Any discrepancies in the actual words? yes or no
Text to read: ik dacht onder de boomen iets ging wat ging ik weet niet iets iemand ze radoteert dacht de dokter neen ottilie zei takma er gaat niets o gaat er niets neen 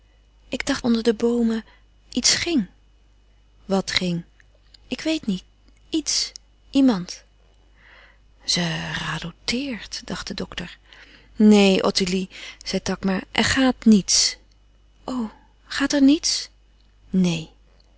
no